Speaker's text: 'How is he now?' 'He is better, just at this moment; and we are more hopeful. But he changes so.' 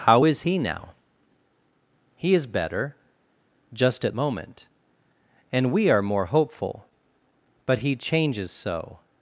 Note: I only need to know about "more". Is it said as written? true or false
true